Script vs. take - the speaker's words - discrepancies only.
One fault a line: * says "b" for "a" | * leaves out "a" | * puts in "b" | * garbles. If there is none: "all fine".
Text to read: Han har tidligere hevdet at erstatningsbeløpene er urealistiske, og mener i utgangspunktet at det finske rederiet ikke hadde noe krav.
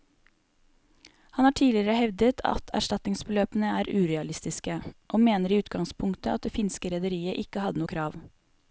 all fine